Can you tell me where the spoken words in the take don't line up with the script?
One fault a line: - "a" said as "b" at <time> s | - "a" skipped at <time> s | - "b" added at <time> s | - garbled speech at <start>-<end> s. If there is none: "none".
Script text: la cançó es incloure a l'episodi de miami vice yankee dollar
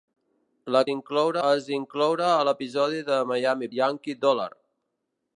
- "cançó" said as "incloure" at 0.9 s
- "vice" skipped at 3.7 s